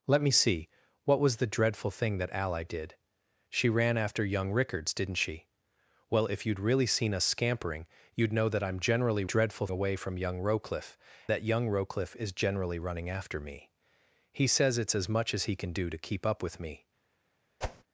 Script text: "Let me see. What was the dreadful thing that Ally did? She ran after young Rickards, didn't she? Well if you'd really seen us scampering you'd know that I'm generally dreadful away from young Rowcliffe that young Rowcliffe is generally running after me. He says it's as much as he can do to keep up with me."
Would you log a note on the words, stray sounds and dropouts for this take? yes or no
yes